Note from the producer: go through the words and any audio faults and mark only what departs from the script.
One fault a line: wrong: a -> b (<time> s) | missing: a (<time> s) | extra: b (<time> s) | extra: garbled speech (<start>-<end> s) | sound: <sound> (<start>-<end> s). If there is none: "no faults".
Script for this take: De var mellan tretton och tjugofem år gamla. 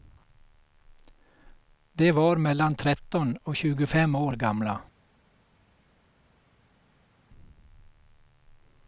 no faults